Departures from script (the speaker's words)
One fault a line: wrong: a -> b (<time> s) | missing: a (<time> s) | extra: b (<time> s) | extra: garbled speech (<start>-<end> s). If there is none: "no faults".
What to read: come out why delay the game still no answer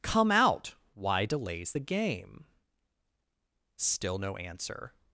wrong: delay -> delays (1.2 s)